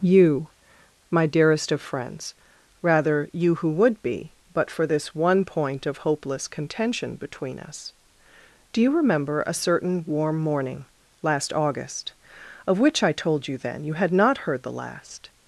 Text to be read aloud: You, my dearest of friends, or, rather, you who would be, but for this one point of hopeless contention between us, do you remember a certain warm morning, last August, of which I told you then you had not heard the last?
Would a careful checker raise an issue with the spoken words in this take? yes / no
yes